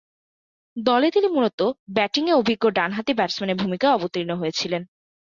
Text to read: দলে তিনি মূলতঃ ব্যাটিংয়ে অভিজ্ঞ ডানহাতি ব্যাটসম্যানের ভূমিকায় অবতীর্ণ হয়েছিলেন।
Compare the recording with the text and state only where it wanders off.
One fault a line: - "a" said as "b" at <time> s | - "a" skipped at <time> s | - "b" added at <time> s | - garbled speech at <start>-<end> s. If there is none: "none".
none